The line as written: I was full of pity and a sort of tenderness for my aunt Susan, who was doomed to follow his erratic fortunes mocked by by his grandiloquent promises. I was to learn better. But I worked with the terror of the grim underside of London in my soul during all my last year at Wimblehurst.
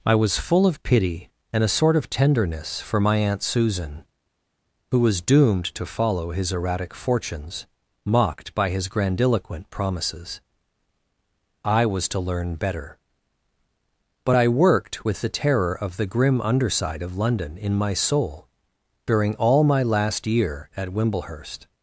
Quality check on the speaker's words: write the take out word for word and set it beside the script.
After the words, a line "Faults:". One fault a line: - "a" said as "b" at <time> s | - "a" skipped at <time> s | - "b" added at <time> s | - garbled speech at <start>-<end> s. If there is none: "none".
I was full of pity and a sort of tenderness for my aunt Susan, who was doomed to follow his erratic fortunes mocked by his grandiloquent promises. I was to learn better. But I worked with the terror of the grim underside of London in my soul during all my last year at Wimblehurst.
Faults:
- "by" skipped at 8.7 s